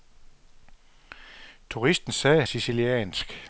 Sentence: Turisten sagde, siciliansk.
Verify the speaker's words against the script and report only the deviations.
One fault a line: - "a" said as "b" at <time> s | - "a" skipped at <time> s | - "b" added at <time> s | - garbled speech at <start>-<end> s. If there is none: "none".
none